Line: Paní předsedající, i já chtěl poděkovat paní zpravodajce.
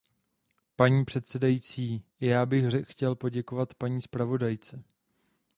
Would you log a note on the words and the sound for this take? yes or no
yes